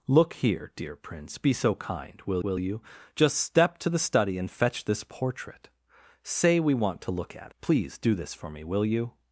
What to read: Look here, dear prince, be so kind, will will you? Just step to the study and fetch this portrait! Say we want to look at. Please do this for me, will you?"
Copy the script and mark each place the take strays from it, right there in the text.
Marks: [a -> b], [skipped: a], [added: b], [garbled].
Look here, dear prince, be so kind, will will you? Just step to the study and fetch this portrait! Say we want to look at. Please do this for me, will you?"